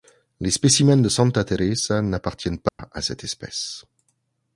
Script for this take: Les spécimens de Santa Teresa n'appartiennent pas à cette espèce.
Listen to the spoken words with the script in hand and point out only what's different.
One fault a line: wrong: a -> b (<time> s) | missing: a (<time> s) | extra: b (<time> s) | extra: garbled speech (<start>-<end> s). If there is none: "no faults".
no faults